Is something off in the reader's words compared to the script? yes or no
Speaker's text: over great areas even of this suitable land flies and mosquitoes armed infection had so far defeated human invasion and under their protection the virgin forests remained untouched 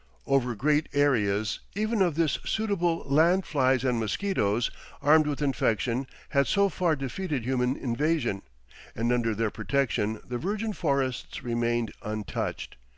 yes